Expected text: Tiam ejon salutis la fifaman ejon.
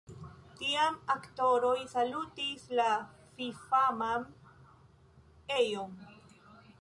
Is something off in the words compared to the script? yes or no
yes